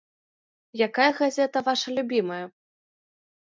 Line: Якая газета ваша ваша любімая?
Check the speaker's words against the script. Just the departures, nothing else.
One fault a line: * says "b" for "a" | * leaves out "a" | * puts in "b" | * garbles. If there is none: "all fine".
* leaves out "ваша"